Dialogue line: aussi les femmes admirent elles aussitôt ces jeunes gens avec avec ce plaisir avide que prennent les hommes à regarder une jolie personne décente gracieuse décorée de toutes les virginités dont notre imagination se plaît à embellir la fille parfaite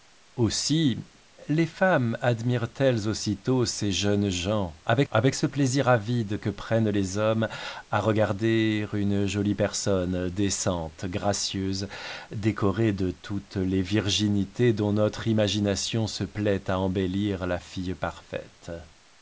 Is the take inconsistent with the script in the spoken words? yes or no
no